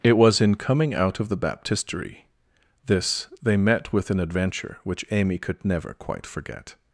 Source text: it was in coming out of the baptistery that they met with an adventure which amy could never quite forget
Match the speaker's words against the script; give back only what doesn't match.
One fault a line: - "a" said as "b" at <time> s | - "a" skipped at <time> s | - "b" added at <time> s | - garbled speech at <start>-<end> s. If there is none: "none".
- "that" said as "this" at 2.9 s